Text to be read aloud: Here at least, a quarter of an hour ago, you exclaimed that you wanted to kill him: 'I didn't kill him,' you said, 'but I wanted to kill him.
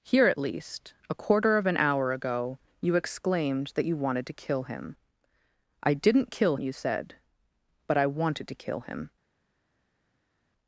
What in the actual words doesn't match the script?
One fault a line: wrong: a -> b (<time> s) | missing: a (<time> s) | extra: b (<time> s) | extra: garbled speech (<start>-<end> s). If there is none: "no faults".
missing: him (6.6 s)